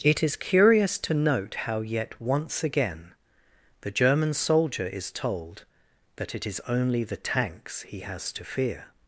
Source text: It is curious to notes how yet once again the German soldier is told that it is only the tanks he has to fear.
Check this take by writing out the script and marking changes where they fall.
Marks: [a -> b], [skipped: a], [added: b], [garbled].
It is curious to [notes -> note] how yet once again the German soldier is told that it is only the tanks he has to fear.